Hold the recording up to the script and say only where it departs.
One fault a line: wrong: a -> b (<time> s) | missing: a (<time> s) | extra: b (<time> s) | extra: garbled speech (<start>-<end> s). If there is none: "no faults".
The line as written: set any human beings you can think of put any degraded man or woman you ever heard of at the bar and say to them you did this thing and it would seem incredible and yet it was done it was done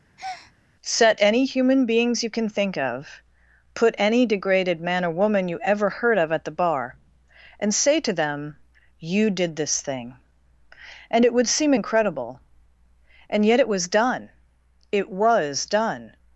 no faults